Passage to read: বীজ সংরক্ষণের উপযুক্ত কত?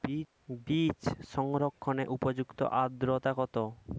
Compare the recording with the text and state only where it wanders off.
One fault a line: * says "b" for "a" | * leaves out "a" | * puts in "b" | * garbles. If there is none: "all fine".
* puts in "আদ্রতা"